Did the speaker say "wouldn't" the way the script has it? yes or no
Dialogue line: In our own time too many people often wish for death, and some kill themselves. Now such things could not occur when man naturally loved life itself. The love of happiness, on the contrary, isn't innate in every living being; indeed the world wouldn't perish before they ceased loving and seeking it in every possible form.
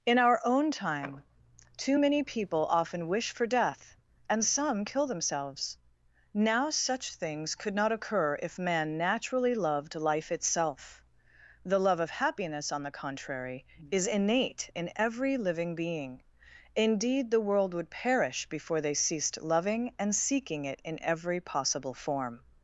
no